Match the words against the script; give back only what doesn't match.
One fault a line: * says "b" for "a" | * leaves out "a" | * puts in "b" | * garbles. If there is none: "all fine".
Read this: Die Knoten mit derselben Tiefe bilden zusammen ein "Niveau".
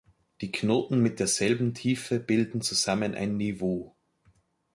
all fine